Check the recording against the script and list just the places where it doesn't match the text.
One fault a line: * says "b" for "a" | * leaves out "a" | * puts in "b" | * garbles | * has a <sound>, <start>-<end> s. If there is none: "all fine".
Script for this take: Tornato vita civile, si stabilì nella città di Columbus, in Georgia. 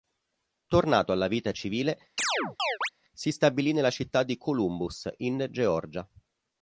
* puts in "alla"
* has a chirp, 2.2-2.9 s